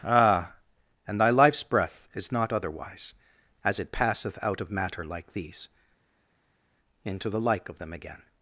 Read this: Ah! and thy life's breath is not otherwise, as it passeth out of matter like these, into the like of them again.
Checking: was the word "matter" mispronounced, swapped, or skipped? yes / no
no